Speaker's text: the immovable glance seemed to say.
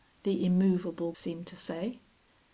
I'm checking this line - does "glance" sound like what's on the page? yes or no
no